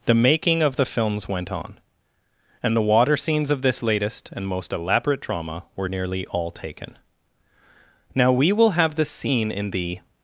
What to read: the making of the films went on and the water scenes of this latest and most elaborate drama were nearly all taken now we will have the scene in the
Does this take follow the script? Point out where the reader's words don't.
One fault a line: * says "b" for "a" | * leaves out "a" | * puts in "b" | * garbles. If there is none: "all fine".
all fine